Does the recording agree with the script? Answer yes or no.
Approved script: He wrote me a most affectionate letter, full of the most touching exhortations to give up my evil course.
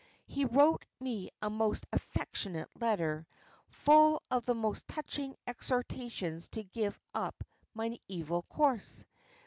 yes